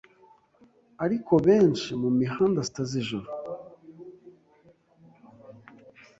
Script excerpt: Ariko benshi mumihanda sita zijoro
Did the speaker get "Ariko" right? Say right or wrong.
right